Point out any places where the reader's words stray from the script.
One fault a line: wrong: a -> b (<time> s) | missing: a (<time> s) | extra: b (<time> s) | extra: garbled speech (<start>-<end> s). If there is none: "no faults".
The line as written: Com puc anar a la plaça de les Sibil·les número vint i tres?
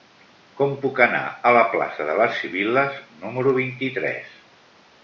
no faults